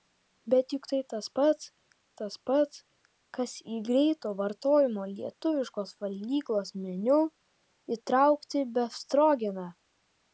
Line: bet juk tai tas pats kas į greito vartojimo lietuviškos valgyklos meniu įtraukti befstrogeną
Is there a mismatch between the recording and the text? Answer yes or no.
yes